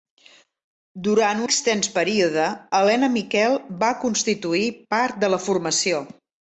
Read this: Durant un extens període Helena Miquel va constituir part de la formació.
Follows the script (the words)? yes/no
no